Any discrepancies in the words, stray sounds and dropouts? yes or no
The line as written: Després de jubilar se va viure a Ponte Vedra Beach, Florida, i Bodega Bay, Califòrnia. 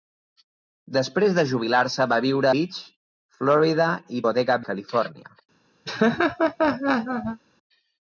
yes